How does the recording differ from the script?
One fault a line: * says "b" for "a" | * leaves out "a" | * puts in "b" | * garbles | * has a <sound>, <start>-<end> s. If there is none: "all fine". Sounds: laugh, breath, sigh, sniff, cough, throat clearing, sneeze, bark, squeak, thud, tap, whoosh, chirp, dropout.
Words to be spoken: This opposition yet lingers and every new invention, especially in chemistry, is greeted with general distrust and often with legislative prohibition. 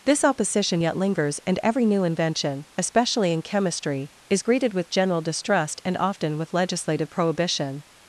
all fine